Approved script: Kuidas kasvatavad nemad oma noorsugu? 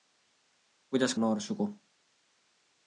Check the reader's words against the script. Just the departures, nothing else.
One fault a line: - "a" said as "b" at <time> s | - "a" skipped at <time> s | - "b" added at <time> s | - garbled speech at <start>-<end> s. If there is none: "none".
- "kasvatavad nemad oma" skipped at 1.1 s